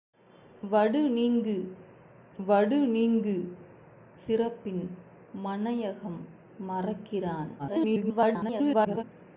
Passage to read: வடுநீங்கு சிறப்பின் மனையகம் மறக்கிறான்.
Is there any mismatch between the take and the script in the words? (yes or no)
yes